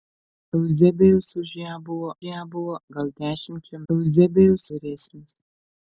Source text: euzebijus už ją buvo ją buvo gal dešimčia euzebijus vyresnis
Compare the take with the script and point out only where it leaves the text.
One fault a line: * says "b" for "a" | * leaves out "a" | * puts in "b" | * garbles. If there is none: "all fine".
all fine